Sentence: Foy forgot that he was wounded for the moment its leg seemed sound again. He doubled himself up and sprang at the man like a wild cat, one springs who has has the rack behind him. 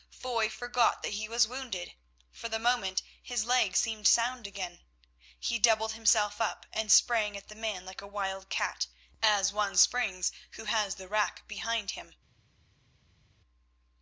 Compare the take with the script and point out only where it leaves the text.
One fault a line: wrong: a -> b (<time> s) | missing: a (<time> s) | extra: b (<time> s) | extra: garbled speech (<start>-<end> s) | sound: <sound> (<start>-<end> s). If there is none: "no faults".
wrong: its -> his (3.2 s)
extra: as (9.2 s)
missing: has (10.9 s)